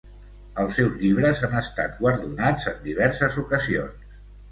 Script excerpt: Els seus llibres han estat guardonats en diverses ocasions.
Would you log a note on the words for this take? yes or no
no